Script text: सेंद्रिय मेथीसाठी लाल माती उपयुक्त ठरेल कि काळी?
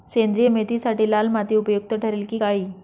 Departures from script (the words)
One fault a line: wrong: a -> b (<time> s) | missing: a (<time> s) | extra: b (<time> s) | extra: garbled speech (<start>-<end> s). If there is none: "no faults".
no faults